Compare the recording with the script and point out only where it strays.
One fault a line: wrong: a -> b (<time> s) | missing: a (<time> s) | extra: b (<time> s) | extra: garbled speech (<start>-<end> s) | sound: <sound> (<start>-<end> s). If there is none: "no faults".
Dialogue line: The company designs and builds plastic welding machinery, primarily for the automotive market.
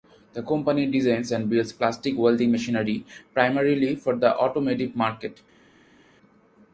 no faults